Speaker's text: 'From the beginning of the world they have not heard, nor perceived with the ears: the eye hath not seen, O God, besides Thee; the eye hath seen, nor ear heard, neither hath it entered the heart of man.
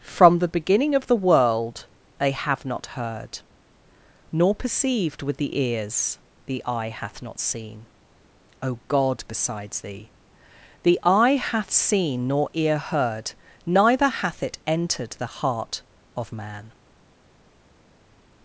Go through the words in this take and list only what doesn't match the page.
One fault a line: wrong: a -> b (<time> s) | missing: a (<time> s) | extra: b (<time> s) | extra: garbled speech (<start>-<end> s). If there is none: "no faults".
no faults